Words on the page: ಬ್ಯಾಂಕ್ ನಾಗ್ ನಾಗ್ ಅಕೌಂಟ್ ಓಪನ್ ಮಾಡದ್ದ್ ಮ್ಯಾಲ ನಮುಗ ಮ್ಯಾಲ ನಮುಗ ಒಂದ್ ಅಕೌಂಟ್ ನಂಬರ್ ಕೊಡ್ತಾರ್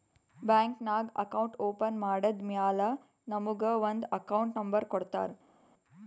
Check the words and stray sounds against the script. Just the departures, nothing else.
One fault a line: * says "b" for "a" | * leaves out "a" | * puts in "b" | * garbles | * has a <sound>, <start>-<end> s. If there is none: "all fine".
* leaves out "ನಾಗ್"
* leaves out "ಮ್ಯಾಲ ನಮುಗ"